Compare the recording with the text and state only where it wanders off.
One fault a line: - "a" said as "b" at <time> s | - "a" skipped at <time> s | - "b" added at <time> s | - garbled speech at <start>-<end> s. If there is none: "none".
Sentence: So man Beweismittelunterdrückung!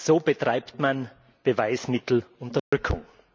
- "betreibt" added at 0.2 s